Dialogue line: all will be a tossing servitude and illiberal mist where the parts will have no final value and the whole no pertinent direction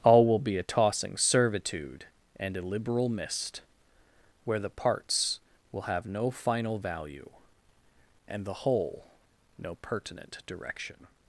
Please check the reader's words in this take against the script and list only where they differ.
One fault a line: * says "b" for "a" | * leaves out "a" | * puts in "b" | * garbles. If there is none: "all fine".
all fine